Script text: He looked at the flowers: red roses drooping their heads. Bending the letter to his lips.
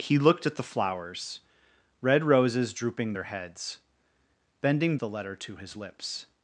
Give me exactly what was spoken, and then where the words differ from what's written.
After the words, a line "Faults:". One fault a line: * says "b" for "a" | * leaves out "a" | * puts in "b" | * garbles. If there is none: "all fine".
He looked at the flowers: red roses drooping their heads. Bending the letter to his lips.
Faults:
all fine